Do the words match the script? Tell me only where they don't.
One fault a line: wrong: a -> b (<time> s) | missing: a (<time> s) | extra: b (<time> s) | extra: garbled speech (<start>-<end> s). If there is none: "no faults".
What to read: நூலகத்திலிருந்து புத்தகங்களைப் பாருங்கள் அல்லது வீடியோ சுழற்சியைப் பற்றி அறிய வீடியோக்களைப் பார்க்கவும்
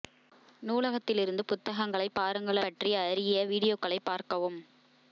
missing: அல்லது வீடியோ சுழற்சியைப் (2.6 s)